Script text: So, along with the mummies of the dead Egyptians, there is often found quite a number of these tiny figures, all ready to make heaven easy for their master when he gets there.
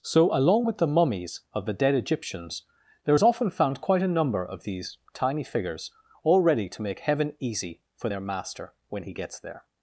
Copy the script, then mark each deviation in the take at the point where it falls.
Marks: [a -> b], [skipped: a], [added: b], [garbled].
So, along with the mummies of the dead Egyptians, there is often found quite a number of these tiny figures, all ready to make heaven easy for their master when he gets there.